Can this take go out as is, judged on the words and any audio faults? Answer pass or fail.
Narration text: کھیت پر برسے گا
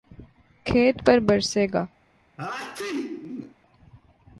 fail